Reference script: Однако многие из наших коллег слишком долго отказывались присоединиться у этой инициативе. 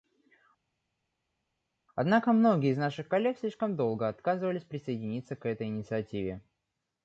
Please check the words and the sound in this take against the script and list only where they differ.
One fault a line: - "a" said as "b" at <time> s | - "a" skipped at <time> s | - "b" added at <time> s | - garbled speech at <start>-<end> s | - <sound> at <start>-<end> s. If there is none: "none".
- "у" said as "к" at 5.3 s